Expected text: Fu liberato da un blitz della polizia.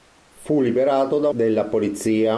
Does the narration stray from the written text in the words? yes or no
yes